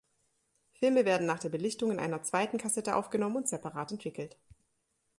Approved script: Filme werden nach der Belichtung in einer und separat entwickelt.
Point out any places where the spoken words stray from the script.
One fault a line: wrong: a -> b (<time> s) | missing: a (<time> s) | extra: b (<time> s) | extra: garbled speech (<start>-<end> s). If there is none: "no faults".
extra: zweiten Kassette aufgenommen (2.2 s)